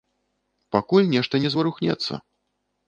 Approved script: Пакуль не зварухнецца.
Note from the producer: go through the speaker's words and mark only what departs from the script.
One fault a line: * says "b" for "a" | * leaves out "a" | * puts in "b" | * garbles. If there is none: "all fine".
* puts in "нешта"